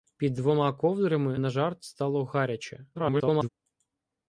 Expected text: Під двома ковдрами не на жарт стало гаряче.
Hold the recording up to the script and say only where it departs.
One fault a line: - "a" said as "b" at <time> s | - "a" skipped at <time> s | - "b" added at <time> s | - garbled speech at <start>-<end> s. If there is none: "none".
- "не" skipped at 1.4 s
- garbled speech at 2.9-3.5 s